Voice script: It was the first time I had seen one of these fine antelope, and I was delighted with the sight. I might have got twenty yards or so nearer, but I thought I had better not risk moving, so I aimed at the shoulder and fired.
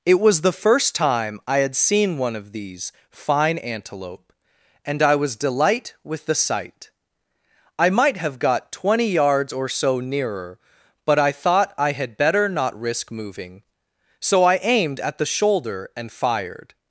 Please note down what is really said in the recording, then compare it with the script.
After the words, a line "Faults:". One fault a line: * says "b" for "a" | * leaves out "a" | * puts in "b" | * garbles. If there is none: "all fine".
It was the first time I had seen one of these fine antelope, and I was delight with the sight. I might have got twenty yards or so nearer, but I thought I had better not risk moving, so I aimed at the shoulder and fired.
Faults:
* says "delight" for "delighted"